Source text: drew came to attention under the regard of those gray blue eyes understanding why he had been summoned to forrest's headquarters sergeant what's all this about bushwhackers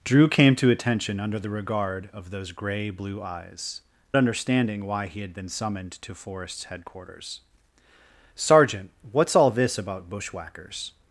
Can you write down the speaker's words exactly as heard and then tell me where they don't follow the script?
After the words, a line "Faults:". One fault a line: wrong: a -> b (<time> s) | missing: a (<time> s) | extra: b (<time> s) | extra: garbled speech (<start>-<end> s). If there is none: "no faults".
drew came to attention under the regard of those gray blue eyes understanding why he had been summoned to forrest's headquarters sergeant what's all this about bushwhackers
Faults:
no faults